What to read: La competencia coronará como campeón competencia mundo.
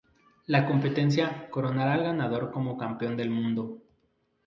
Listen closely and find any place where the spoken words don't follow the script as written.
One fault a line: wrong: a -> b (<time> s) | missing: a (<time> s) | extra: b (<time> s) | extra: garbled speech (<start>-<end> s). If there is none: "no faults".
extra: al ganador (1.9 s)
wrong: competencia -> del (3.2 s)